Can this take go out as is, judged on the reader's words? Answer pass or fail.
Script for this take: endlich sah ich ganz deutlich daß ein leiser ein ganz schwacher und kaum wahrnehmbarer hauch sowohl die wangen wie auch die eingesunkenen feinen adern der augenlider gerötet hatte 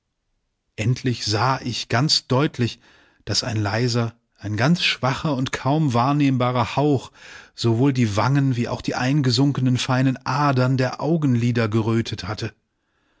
pass